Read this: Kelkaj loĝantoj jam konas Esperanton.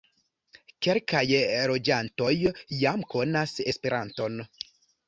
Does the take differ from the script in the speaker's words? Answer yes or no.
no